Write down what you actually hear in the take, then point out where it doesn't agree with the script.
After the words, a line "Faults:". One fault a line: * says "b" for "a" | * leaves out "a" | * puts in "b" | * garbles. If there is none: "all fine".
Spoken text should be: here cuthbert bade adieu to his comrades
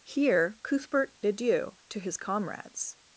here cuthbert adieu to his comrades
Faults:
* leaves out "bade"